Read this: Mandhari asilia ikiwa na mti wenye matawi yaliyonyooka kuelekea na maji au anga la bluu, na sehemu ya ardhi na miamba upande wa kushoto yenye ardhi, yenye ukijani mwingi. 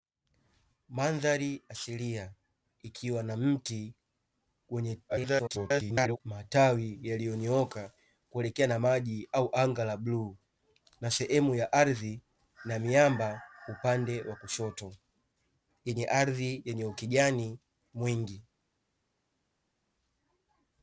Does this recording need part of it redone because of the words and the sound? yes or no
yes